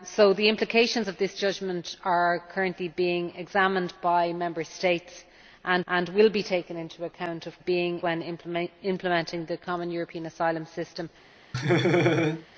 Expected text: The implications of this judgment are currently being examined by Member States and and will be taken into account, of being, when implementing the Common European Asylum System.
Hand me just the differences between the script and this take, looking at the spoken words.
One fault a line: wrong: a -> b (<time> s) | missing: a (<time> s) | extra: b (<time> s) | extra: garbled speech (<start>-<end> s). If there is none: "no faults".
no faults